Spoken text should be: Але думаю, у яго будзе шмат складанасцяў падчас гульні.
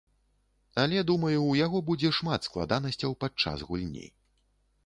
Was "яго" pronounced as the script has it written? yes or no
yes